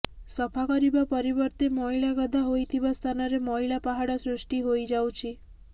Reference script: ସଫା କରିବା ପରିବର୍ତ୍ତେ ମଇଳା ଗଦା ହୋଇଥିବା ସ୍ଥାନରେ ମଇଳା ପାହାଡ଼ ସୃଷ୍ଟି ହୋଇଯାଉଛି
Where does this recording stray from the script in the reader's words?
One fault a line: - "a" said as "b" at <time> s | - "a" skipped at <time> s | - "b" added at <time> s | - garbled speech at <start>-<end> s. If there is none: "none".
none